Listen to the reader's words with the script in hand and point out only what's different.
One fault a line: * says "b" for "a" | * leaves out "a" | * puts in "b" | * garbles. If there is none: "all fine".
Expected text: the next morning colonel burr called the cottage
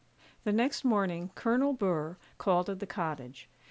* puts in "at"